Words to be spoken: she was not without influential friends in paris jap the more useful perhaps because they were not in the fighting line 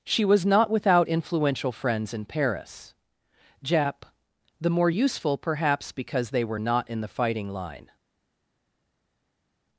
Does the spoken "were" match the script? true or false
true